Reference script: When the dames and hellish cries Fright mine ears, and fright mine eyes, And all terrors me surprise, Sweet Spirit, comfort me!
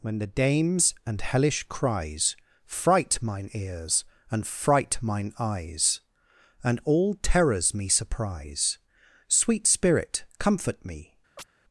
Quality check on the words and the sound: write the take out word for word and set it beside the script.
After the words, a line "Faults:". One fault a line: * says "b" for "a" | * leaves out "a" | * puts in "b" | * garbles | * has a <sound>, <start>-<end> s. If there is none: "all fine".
When the dames and hellish cries Fright mine ears, and fright mine eyes, And all terrors me surprise, Sweet Spirit, comfort me!
Faults:
* has a chirp, 11.4-11.5 s